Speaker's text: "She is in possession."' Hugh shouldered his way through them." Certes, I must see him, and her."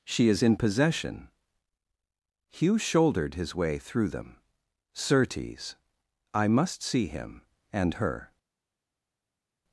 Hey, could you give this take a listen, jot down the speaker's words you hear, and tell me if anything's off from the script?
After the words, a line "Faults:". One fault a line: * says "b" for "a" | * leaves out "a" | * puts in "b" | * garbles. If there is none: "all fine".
"She is in possession."' Hugh shouldered his way through them." Certes, I must see him, and her."
Faults:
all fine